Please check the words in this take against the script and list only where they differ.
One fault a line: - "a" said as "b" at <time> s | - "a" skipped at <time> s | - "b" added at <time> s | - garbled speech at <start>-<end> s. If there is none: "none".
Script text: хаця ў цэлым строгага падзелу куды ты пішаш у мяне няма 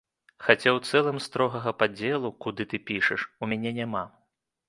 none